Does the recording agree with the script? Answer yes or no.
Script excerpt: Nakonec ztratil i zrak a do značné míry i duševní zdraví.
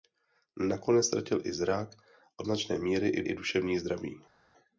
no